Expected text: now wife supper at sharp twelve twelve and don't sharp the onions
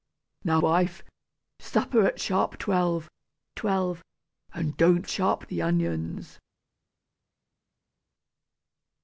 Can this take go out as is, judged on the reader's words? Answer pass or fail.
pass